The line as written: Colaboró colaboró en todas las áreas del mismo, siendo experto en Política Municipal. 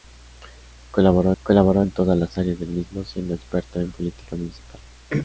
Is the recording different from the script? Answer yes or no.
no